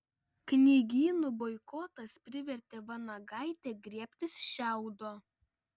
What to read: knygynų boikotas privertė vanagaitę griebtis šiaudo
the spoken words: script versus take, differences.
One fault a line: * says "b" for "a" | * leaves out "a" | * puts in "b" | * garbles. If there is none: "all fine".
all fine